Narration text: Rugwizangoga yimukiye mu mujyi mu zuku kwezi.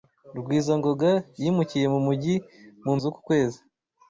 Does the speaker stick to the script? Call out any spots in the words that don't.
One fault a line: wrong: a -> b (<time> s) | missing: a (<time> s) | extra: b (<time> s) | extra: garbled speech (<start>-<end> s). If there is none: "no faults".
no faults